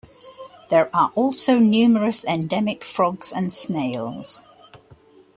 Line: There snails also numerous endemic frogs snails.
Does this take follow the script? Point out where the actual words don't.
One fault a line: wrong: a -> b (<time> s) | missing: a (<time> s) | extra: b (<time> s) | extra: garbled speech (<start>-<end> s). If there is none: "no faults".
wrong: snails -> are (0.9 s)
extra: and (3.3 s)